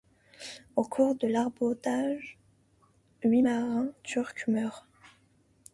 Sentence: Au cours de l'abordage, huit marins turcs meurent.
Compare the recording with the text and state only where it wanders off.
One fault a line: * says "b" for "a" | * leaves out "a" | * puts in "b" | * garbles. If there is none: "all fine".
all fine